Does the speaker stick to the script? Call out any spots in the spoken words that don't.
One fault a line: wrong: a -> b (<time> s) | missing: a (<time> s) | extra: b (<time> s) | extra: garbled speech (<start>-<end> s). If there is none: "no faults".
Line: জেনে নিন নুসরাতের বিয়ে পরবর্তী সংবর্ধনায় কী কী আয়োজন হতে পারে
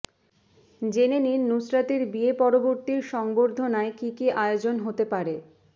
no faults